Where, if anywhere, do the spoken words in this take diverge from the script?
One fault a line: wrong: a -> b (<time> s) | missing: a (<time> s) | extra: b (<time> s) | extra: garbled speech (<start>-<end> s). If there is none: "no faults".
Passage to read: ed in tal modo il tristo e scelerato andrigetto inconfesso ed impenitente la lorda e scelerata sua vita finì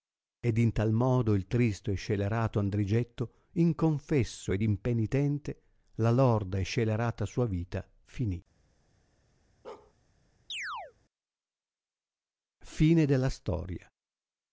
no faults